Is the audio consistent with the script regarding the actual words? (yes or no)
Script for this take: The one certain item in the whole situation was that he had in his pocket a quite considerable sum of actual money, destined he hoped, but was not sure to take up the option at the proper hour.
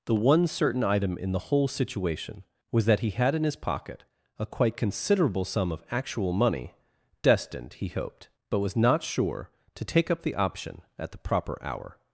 yes